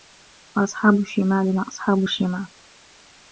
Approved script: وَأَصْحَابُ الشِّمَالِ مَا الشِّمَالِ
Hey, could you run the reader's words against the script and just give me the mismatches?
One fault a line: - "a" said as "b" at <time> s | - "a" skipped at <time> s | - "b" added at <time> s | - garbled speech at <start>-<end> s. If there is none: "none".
- "أَصْحَابُ" added at 1.7 s